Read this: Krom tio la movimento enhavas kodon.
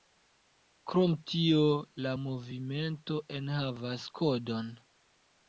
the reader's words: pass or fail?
pass